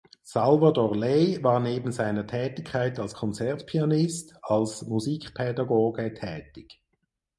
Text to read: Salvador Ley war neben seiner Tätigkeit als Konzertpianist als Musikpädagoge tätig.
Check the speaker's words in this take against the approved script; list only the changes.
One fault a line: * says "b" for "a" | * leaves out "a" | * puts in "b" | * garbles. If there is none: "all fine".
all fine